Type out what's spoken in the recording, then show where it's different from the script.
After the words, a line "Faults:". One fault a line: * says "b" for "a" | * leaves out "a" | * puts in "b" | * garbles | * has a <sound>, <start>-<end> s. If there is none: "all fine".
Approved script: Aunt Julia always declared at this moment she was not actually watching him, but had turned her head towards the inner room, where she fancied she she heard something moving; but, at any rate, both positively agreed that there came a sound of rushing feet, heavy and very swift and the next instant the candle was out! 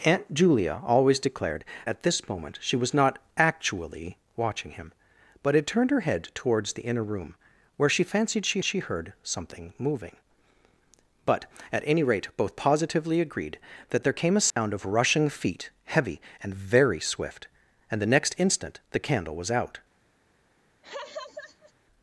Aunt Julia always declared at this moment she was not actually watching him, but had turned her head towards the inner room, where she fancied she she heard something moving; but, at any rate, both positively agreed that there came a sound of rushing feet, heavy and very swift and the next instant the candle was out!
Faults:
* has a dropout, 14.5-14.6 s
* has a laugh, 20.8-21.7 s